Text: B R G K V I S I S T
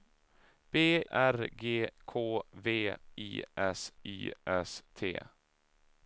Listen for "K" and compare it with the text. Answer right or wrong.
right